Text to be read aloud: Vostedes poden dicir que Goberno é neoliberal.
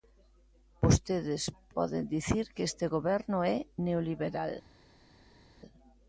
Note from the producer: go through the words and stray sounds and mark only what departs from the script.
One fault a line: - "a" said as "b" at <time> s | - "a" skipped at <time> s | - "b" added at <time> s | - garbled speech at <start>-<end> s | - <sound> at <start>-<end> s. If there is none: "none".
- "este" added at 2.7 s